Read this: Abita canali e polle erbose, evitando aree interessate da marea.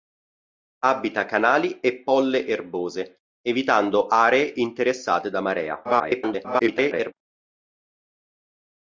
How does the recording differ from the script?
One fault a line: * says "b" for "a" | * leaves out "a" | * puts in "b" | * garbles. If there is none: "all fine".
* garbles